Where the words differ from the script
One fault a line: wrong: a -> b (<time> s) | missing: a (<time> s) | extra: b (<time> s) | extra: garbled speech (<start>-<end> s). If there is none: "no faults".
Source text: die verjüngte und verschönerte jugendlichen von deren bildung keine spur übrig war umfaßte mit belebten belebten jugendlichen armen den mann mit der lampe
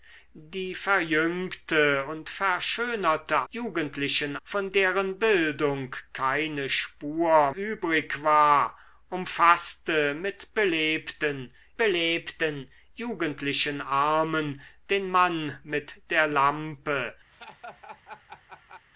no faults